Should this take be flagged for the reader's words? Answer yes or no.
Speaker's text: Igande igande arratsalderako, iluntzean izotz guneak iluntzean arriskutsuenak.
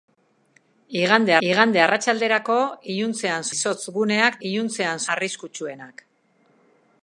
no